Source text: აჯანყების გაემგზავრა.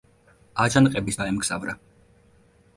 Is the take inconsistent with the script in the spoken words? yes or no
no